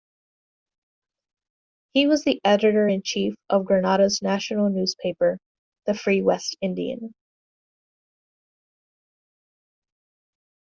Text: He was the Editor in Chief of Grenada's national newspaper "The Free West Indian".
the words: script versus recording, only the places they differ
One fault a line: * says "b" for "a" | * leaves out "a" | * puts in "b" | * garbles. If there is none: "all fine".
all fine